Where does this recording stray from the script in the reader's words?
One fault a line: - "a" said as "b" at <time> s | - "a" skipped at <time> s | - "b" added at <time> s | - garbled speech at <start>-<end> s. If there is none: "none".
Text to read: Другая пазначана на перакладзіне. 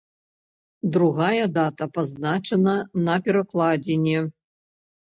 - "дата" added at 1.6 s